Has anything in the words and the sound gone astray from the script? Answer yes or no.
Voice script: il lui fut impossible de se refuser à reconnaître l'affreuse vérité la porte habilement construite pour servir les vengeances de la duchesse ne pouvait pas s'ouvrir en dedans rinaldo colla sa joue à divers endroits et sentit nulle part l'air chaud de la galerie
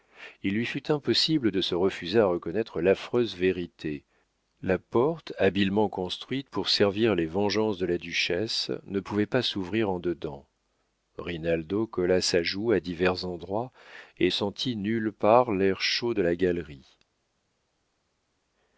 no